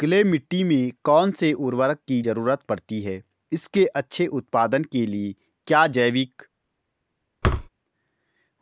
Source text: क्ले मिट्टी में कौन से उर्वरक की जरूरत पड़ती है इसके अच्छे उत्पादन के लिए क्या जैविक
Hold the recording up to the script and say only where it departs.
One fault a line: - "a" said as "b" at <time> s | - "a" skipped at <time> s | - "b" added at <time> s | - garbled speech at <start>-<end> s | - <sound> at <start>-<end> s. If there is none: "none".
- thud at 7.4-7.7 s